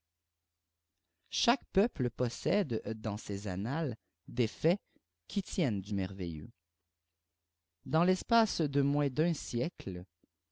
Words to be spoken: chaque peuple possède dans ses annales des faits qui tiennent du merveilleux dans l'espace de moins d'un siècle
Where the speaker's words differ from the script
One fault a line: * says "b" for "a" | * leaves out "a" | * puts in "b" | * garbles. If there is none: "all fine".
all fine